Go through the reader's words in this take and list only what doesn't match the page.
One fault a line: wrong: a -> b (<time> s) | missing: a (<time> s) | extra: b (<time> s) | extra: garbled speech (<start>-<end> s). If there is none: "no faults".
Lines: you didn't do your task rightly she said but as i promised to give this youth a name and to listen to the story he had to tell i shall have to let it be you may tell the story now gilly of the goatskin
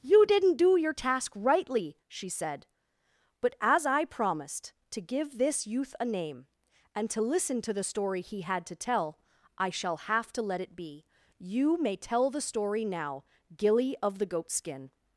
no faults